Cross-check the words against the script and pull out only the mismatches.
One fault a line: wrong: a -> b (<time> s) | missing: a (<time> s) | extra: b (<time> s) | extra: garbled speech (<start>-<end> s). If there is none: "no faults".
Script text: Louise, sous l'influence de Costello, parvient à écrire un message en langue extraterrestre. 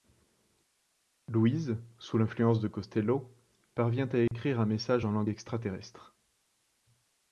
no faults